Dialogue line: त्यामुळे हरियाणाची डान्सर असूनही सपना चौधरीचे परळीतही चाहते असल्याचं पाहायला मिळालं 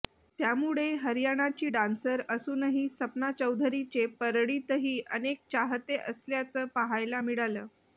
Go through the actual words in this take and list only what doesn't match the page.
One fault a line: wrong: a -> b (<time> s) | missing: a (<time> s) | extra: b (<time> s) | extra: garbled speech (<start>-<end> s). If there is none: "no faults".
extra: अनेक (5.1 s)